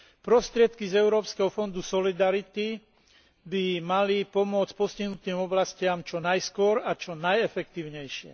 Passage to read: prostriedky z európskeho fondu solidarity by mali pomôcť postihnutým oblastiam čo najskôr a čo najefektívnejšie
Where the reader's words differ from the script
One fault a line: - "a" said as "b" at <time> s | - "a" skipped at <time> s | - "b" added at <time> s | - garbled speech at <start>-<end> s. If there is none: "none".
none